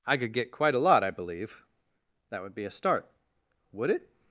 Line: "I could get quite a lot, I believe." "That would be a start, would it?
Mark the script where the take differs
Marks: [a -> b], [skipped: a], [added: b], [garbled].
"I could get quite a lot, I believe." "That would be a start, would it?